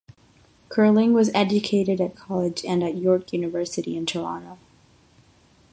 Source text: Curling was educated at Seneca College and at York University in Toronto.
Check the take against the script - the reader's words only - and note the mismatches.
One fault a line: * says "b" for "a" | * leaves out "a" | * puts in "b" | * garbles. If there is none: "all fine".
* leaves out "Seneca"